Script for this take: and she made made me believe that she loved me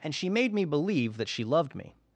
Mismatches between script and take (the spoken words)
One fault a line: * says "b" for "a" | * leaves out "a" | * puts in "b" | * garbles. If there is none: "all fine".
* leaves out "made"